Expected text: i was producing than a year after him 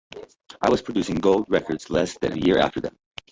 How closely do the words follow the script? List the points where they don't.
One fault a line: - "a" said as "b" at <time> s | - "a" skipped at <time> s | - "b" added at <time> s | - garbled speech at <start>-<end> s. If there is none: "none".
- "gold records less" added at 1.2 s
- "him" said as "them" at 2.8 s